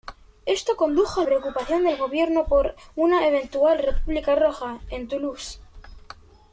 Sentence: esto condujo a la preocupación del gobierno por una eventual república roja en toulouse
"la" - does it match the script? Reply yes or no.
no